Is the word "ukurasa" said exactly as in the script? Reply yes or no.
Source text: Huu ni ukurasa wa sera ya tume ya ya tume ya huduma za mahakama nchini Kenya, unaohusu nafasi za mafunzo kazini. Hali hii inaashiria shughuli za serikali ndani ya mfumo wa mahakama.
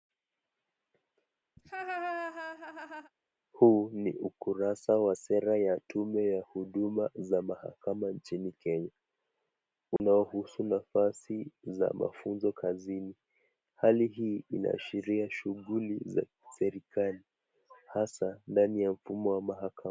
yes